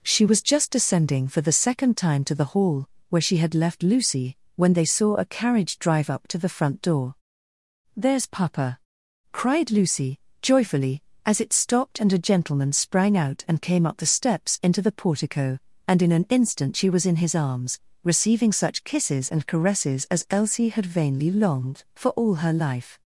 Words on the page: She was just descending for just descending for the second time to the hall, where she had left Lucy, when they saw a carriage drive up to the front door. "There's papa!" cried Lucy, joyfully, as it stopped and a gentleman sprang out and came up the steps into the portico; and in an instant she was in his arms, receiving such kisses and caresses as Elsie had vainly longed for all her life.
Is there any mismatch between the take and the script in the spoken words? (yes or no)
yes